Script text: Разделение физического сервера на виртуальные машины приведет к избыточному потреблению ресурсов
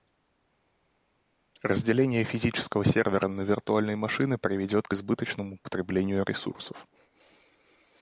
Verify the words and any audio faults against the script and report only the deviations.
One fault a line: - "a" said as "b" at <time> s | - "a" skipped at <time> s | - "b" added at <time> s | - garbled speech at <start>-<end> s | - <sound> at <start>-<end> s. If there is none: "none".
none